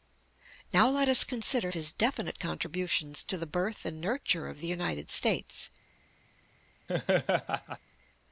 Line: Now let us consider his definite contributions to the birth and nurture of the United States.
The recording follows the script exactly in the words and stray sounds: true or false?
false